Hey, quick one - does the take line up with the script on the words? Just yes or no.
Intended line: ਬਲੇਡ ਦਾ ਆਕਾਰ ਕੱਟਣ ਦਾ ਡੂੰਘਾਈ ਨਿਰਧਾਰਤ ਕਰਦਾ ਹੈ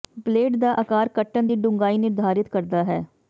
no